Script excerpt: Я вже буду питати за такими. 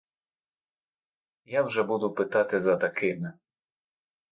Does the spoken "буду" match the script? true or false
true